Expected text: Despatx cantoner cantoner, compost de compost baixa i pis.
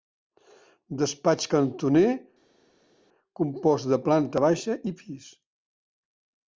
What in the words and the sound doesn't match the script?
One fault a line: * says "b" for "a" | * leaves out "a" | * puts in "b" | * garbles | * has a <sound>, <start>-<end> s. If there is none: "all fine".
* leaves out "cantoner"
* says "planta" for "compost"